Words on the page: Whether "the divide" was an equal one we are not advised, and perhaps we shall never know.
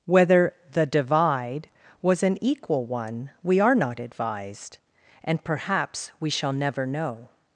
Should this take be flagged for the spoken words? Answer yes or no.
no